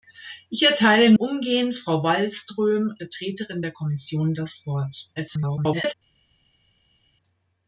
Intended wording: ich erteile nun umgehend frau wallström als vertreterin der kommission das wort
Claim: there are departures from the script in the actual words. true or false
true